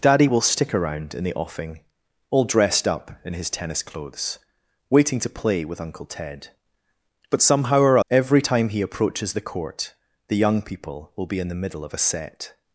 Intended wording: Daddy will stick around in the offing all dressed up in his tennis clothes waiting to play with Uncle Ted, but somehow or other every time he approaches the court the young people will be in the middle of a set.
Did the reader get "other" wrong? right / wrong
wrong